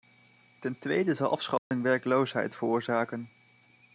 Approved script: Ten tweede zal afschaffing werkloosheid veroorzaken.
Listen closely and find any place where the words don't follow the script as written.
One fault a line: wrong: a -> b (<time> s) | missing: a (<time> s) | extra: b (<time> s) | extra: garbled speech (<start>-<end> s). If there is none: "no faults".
no faults